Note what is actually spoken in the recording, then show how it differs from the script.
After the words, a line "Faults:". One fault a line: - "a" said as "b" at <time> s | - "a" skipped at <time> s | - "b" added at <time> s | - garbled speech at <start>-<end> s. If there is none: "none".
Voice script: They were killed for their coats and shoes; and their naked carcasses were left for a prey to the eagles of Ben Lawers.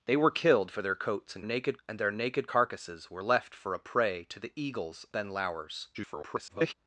They were killed for their coats and naked; and their naked carcasses were left for a prey to the eagles Ben Lawers. [garbled]
Faults:
- "shoes" said as "naked" at 1.4 s
- "of" skipped at 5.1 s
- garbled speech at 5.9-6.7 s